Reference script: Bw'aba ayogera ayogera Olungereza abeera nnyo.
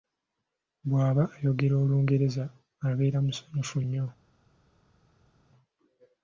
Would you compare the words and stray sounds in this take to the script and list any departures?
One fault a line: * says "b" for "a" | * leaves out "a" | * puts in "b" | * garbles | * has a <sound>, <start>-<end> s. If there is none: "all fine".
* leaves out "ayogera"
* puts in "musanyufu"